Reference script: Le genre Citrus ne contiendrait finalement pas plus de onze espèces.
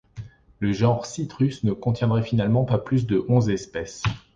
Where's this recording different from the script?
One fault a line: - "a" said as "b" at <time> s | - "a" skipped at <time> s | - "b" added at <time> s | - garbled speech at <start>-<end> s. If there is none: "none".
none